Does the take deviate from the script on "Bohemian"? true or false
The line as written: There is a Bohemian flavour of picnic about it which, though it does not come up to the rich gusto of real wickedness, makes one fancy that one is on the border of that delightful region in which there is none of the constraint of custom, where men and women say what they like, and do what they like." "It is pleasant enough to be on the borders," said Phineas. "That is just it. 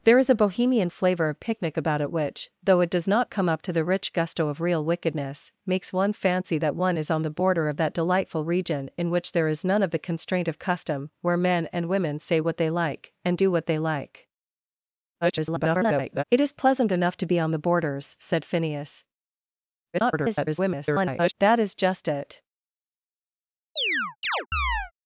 false